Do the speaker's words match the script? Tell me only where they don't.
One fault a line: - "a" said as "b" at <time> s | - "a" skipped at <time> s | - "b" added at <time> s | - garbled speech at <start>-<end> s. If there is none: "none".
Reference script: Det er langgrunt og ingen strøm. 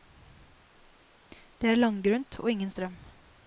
none